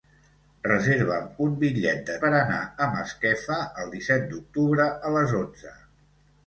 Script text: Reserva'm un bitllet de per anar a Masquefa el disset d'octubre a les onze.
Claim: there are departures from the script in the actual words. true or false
false